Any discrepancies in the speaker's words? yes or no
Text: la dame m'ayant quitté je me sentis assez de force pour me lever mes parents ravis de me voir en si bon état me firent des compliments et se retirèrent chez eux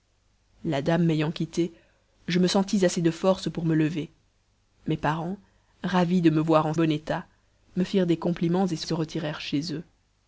yes